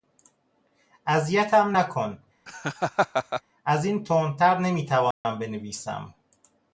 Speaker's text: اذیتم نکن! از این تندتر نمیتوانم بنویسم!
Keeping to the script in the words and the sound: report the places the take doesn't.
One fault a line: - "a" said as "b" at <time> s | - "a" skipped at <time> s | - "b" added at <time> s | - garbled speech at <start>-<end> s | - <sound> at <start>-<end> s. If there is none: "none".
- laugh at 2.5-3.4 s
- dropout at 5.1-5.2 s